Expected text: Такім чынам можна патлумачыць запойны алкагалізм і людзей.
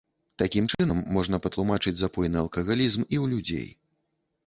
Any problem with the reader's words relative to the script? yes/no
yes